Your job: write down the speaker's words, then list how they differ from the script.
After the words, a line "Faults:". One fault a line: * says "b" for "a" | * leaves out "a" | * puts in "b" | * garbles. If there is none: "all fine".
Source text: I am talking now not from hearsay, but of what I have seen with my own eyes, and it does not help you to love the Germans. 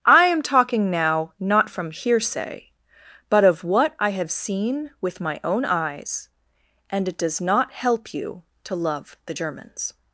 I am talking now not from hearsay, but of what I have seen with my own eyes, and it does not help you to love the Germans.
Faults:
all fine